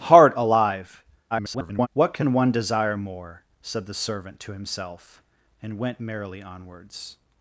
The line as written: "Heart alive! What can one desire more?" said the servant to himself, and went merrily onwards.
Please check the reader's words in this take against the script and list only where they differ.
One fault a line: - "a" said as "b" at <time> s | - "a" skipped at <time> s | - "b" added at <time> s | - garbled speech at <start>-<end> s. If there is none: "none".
- garbled speech at 1.3-1.9 s